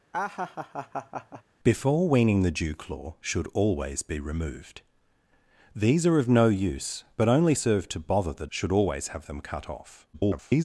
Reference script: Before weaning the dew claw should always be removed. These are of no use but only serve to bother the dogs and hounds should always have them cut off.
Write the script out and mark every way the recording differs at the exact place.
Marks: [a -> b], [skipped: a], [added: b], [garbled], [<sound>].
[laugh] Before weaning the dew claw should always be removed. These are of no use but only serve to bother the [skipped: dogs and hounds] should always have them cut off. [garbled]